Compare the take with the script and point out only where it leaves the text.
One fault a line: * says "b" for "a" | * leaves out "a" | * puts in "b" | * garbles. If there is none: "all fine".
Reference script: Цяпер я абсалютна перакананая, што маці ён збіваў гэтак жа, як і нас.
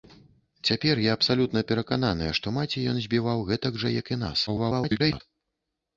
* garbles